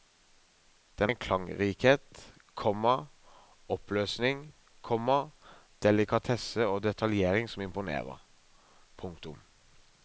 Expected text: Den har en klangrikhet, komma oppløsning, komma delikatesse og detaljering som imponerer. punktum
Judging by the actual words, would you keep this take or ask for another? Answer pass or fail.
fail